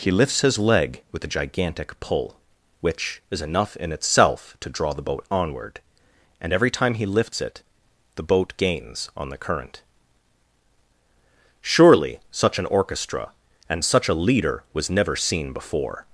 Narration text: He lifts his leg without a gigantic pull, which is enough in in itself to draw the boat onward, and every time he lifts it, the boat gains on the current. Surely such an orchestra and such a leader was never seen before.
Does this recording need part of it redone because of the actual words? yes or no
yes